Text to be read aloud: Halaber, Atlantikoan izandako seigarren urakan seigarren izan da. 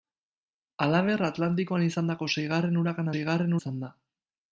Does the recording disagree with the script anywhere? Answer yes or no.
no